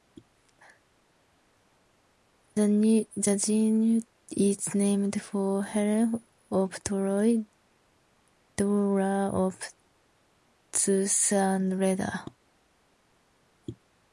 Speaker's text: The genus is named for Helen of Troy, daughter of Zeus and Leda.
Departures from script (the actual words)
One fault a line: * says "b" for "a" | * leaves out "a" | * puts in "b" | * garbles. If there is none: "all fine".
all fine